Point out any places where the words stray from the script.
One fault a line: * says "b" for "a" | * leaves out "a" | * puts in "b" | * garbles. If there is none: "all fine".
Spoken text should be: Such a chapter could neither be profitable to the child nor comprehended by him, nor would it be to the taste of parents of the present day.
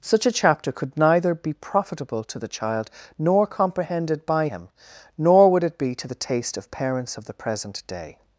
all fine